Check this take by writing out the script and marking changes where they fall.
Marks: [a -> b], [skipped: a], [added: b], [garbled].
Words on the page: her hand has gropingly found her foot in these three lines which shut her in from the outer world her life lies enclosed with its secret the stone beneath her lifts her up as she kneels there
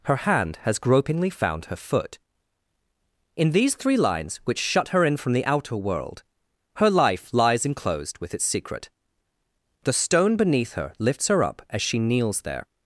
her hand has gropingly found her foot in these three lines which shut her in from the outer world her life lies enclosed with its secret the stone beneath her lifts her up as she kneels there